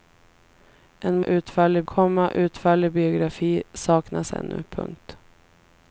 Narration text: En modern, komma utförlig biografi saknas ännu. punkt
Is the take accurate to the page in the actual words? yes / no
no